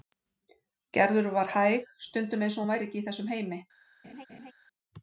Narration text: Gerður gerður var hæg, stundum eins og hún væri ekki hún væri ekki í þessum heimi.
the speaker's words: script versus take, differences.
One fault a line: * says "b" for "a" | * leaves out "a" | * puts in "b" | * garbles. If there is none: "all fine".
* leaves out "gerður"
* leaves out "hún væri ekki"